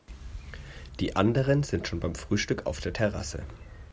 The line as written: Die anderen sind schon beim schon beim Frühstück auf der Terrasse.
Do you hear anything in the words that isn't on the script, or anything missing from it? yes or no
yes